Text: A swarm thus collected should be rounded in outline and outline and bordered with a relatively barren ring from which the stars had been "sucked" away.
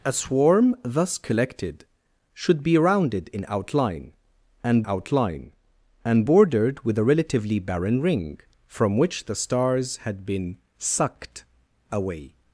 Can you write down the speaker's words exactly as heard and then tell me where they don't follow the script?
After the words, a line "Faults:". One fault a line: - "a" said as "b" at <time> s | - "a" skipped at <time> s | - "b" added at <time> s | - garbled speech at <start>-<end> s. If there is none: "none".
A swarm thus collected should be rounded in outline and outline and bordered with a relatively barren ring from which the stars had been "sucked" away.
Faults:
none